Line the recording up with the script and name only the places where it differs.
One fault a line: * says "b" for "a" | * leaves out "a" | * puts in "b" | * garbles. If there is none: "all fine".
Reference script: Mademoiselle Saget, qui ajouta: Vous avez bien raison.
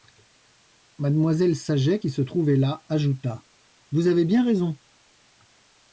* puts in "se trouvait là"